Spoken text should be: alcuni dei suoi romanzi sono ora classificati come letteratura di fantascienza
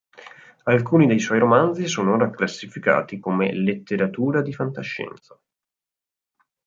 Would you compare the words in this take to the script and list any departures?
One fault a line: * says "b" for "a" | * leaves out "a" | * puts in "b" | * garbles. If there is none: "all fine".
all fine